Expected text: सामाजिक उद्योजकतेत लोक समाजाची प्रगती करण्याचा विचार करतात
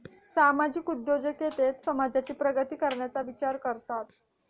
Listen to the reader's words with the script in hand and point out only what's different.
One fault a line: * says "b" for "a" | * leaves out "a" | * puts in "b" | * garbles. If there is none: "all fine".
* leaves out "लोक"